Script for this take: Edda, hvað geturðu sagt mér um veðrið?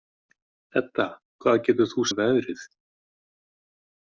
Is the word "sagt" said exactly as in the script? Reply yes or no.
no